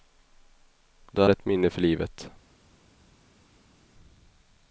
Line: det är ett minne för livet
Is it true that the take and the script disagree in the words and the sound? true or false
false